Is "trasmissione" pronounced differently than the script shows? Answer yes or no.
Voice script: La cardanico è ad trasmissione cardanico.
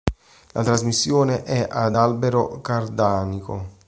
yes